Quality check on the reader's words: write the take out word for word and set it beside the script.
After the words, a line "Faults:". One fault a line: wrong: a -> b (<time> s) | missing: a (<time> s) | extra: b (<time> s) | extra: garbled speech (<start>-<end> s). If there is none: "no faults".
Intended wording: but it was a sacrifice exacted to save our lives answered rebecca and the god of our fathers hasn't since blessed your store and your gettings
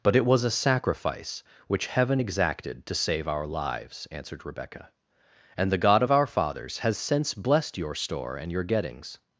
but it was a sacrifice which heaven exacted to save our lives answered rebecca and the god of our fathers has since blessed your store and your gettings
Faults:
extra: which heaven (1.7 s)
wrong: hasn't -> has (6.8 s)